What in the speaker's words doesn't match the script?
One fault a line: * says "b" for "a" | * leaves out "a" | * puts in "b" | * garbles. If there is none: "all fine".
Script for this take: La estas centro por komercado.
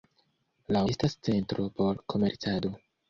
all fine